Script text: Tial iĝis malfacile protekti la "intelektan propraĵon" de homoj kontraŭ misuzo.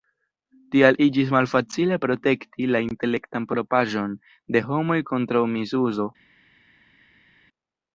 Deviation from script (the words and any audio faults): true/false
false